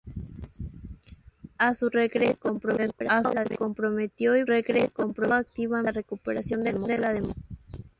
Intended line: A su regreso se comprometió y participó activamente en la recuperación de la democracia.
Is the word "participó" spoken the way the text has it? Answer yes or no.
no